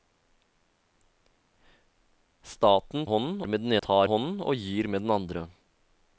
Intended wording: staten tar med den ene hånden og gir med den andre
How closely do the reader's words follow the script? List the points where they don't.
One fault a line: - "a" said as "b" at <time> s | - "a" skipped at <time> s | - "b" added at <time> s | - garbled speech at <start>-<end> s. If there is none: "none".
- "tar" said as "hånden" at 3.1 s
- "ene" said as "tar" at 3.8 s